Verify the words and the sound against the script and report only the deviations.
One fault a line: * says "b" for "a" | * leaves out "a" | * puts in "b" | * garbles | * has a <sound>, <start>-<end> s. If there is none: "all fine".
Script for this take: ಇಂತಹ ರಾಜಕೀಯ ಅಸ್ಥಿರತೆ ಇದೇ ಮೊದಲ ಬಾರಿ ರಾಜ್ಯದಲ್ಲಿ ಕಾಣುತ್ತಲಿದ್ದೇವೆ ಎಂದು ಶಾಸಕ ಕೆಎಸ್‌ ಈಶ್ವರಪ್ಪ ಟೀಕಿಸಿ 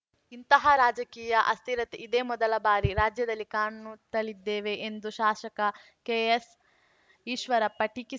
all fine